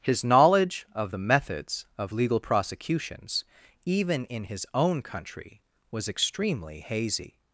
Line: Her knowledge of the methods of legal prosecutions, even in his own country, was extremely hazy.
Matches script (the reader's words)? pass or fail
fail